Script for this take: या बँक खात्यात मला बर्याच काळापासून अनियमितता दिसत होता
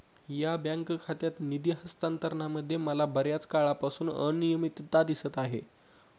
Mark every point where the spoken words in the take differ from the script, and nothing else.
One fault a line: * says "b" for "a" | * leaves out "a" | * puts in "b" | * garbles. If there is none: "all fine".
* puts in "निधी हस्तांतरणामध्ये"
* says "आहे" for "होता"